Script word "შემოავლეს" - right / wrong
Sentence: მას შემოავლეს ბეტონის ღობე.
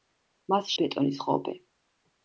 wrong